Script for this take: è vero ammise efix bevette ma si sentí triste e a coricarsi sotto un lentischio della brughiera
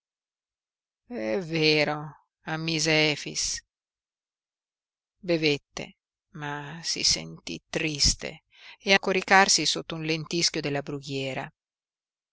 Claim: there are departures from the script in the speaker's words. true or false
false